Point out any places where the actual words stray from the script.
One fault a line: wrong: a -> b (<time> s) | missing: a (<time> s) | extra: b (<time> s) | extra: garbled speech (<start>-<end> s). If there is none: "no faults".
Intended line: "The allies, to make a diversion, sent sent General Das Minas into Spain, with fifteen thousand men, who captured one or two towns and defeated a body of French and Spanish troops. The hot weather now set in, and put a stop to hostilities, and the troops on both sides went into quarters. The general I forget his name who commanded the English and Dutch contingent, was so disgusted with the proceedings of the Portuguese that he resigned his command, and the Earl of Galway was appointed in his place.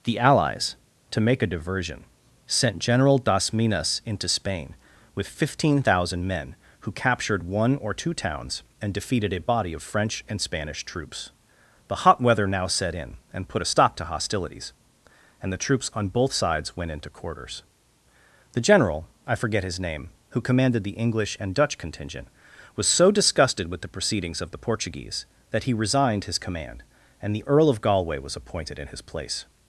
missing: sent (2.8 s)